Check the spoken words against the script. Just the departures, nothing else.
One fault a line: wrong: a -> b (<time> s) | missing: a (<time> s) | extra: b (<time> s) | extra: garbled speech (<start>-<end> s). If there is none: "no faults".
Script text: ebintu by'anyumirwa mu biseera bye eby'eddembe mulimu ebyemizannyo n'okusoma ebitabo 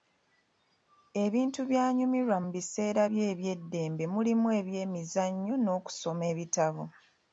no faults